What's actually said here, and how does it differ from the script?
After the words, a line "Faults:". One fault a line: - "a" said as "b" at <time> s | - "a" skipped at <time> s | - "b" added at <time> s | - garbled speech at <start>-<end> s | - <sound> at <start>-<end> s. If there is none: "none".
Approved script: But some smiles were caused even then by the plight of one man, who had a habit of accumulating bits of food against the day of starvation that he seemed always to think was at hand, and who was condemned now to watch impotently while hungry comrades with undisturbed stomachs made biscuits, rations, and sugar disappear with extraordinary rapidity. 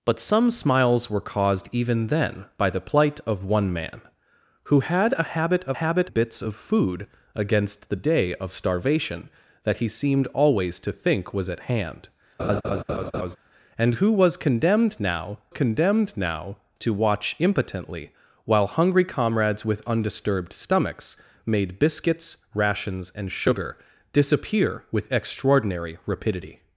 But some smiles were caused even then by the plight of one man, who had a habit of habit bits of food against the day of starvation that he seemed always to think was at hand, and who was condemned now condemned now to watch impotently while hungry comrades with undisturbed stomachs made biscuits, rations, and sugar disappear with extraordinary rapidity.
Faults:
- "accumulating" said as "habit" at 5.8 s
- laugh at 12.4-13.4 s
- "condemned now" added at 15.5 s